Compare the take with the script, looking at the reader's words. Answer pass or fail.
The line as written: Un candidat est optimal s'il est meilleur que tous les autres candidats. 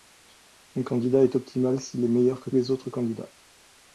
fail